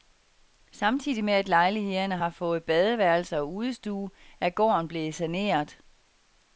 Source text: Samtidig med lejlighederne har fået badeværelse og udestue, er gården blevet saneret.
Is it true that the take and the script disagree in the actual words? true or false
true